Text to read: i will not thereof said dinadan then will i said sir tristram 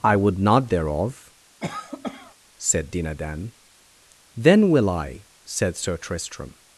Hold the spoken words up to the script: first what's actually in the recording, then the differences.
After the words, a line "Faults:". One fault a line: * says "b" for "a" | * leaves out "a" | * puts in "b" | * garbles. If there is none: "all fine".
i would not thereof said dinadan then will i said sir tristram
Faults:
* says "would" for "will"